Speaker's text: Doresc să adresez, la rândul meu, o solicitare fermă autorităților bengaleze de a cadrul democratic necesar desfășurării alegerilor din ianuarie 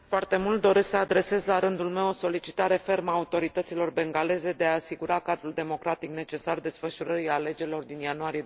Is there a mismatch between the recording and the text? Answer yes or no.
yes